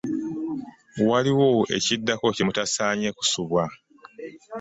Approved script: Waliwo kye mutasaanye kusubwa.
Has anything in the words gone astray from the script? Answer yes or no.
yes